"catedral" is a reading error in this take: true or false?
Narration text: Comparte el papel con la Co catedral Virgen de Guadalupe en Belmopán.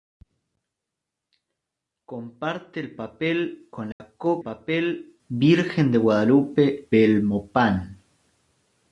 true